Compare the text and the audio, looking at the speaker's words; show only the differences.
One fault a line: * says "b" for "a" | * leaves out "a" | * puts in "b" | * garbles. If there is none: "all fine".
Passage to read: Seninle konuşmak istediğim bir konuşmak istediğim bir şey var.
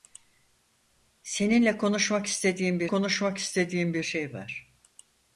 all fine